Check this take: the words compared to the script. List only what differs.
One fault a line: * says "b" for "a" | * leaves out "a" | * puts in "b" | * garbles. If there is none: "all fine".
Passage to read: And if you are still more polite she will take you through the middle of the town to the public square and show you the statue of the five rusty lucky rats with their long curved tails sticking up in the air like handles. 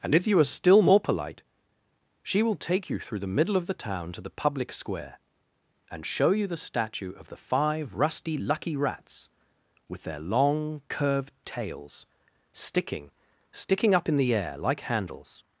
* puts in "sticking"